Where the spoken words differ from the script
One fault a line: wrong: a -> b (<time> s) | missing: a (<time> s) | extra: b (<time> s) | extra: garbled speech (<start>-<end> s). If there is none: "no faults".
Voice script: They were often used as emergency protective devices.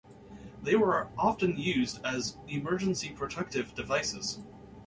no faults